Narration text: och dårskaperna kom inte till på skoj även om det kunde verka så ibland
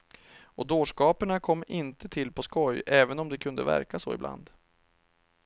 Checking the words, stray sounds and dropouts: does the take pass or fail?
pass